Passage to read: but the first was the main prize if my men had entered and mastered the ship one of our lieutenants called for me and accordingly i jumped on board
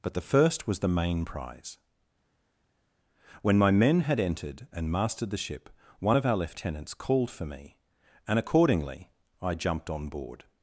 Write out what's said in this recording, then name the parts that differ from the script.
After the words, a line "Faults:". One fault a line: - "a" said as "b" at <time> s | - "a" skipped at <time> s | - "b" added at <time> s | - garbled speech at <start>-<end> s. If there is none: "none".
but the first was the main prize when my men had entered and mastered the ship one of our lieutenants called for me and accordingly i jumped on board
Faults:
- "if" said as "when" at 3.4 s